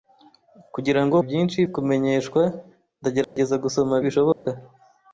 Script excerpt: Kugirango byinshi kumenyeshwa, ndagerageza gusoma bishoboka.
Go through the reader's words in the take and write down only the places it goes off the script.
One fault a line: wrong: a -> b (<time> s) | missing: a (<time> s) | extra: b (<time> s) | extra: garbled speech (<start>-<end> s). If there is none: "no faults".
no faults